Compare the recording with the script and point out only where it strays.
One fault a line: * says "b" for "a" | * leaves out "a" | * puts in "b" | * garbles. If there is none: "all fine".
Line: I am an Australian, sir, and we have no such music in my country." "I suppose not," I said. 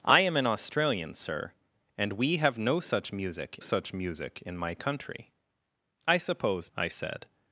* puts in "such music"
* leaves out "not"